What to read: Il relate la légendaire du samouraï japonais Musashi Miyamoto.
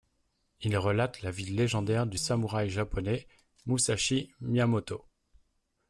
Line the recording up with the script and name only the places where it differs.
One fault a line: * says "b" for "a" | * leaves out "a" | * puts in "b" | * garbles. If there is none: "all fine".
* puts in "vie"